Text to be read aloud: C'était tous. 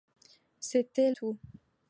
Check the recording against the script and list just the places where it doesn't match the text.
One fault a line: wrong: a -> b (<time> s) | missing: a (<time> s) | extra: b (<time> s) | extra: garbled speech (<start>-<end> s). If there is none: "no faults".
no faults